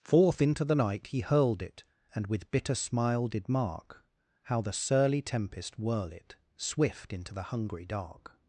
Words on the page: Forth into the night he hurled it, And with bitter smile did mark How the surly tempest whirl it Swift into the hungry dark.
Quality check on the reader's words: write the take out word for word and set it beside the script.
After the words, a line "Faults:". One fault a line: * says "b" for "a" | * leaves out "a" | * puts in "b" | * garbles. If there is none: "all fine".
Forth into the night he hurled it, And with bitter smile did mark How the surly tempest whirl it Swift into the hungry dark.
Faults:
all fine